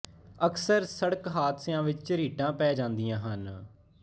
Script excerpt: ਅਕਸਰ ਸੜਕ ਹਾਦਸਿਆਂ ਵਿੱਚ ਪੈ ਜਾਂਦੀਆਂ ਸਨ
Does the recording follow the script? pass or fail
fail